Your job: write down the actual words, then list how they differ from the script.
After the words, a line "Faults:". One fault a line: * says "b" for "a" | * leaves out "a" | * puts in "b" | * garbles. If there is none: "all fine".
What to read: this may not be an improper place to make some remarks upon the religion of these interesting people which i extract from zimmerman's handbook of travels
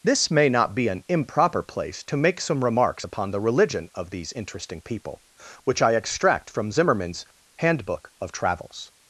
this may not be an improper place to make some remarks upon the religion of these interesting people which i extract from zimmerman's handbook of travels
Faults:
all fine